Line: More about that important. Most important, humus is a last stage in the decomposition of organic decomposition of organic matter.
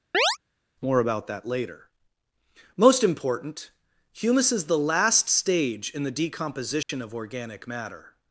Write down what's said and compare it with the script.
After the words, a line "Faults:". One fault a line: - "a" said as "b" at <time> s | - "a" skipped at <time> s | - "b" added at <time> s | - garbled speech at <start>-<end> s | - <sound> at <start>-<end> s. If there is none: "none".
More about that later. Most important, humus is the last stage in the decomposition of organic matter.
Faults:
- chirp at 0.1-0.4 s
- "important" said as "later" at 1.4 s
- "a" said as "the" at 4.6 s
- dropout at 6.8-6.9 s
- "decomposition of organic" skipped at 7.7 s